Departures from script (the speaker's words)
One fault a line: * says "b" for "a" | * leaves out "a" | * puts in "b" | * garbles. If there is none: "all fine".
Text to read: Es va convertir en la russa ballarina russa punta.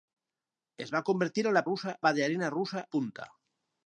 all fine